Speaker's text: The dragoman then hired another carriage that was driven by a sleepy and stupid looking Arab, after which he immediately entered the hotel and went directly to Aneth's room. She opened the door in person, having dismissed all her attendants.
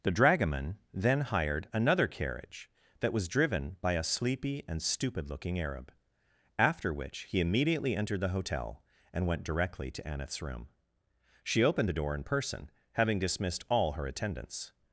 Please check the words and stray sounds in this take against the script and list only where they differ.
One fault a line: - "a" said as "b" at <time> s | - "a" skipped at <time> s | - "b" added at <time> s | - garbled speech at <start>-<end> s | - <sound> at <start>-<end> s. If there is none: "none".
none